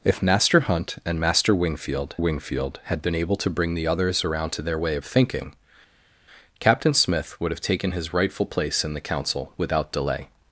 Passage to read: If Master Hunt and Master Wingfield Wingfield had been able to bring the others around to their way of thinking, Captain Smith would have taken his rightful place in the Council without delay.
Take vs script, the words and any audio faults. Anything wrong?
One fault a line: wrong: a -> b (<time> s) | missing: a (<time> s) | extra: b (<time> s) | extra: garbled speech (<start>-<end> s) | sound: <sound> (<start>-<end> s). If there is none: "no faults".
no faults